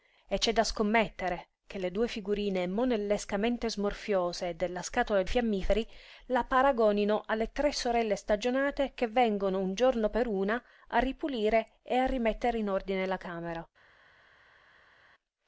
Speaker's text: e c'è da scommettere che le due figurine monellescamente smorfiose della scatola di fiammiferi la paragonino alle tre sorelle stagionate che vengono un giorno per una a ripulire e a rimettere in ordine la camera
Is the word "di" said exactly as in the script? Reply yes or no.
no